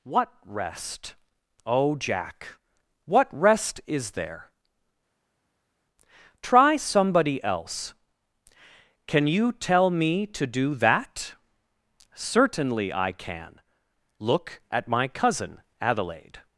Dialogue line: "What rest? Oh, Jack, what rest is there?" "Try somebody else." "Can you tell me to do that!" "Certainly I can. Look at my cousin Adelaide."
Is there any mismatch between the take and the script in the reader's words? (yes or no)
no